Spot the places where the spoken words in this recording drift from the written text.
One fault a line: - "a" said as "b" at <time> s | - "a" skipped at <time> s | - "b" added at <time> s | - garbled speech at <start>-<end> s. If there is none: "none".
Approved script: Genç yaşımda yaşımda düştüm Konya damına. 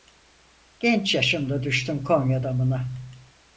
- "yaşımda" skipped at 1.6 s